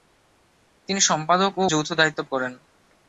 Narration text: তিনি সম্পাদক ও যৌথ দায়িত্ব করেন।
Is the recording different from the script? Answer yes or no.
no